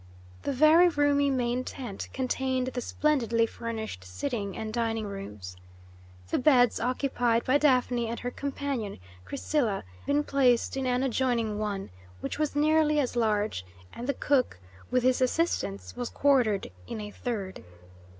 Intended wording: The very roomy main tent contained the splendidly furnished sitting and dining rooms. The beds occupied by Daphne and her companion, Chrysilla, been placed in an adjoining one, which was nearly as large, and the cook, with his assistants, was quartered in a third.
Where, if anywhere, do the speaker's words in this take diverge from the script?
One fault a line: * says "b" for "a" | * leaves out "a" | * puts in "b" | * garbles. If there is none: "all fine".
all fine